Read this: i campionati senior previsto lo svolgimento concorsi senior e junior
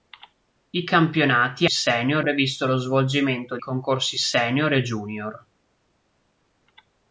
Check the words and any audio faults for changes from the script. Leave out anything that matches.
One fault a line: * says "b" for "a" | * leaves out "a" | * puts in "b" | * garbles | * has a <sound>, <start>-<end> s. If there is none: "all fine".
all fine